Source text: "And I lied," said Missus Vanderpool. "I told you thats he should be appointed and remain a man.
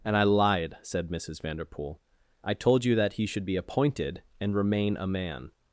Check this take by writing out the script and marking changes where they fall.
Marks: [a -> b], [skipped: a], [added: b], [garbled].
"And I lied," said Missus Vanderpool. "I told you [thats -> that] he should be appointed and remain a man.